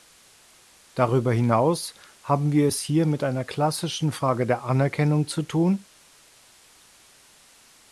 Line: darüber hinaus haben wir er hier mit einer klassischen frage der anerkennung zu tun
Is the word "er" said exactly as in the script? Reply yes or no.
no